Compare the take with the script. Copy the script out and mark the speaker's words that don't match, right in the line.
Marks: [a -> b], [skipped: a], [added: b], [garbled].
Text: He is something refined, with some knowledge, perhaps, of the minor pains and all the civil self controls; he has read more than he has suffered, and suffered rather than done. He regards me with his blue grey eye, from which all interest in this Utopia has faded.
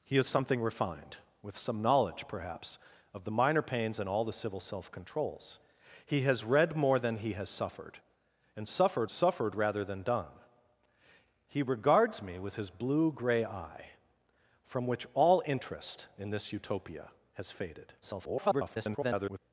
He is something refined, with some knowledge, perhaps, of the minor pains and all the civil self controls; he has read more than he has suffered, and suffered [added: suffered] rather than done. He regards me with his blue grey eye, from which all interest in this Utopia has faded. [garbled]